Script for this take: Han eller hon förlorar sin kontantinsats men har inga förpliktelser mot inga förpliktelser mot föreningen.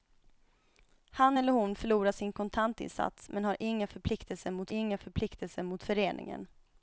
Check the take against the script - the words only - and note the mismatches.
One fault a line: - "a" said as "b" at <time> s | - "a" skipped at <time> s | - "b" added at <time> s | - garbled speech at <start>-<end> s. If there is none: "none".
none